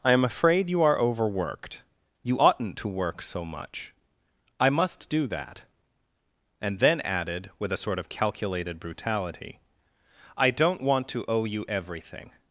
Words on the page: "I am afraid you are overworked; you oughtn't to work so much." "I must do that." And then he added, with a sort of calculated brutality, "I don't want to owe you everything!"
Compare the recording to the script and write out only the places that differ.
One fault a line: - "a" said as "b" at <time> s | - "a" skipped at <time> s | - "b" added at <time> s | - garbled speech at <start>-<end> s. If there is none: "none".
- "he" skipped at 7.0 s